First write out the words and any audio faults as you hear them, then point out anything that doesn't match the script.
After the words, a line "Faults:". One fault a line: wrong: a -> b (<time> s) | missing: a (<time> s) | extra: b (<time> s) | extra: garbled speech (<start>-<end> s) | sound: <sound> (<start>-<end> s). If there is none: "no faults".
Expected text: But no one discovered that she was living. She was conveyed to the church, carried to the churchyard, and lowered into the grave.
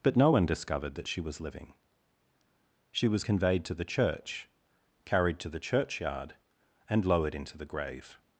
But no one discovered that she was living. She was conveyed to the church, carried to the churchyard, and lowered into the grave.
Faults:
no faults